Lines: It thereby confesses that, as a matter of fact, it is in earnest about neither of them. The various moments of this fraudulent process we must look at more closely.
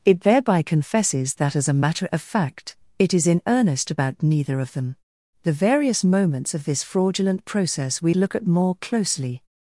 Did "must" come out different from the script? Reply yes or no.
yes